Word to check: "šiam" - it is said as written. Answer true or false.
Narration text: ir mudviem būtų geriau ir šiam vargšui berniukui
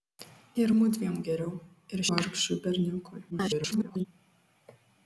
false